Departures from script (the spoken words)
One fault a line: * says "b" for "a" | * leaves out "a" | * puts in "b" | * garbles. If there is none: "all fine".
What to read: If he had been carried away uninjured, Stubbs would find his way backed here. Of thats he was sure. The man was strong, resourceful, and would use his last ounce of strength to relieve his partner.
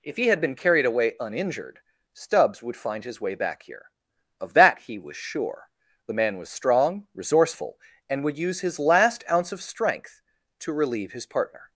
* says "back" for "backed"
* says "that" for "thats"